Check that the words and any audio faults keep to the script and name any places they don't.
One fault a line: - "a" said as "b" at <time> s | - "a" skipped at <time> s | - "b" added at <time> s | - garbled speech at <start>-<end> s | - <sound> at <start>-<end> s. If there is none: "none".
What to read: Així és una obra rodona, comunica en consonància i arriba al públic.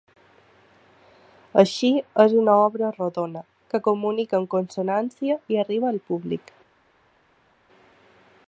- "que" added at 3.7 s